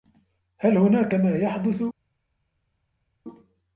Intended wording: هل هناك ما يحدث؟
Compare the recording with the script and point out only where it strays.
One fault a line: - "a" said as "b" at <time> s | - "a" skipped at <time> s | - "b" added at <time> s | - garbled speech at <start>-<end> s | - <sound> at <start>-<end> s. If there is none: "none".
none